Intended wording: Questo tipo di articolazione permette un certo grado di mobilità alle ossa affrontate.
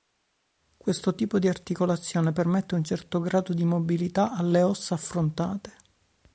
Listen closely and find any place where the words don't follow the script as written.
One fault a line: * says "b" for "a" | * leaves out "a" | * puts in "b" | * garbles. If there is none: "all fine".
all fine